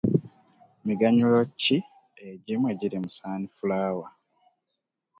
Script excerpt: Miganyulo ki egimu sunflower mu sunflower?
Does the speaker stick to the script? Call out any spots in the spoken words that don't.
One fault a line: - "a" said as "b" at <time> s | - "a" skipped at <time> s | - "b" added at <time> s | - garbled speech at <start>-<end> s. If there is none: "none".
- "sunflower" said as "egiri" at 2.7 s